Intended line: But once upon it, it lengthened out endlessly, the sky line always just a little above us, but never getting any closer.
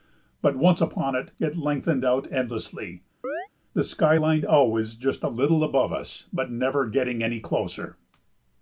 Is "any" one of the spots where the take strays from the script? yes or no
no